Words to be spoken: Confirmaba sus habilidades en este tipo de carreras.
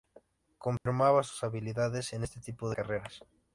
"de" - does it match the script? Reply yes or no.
no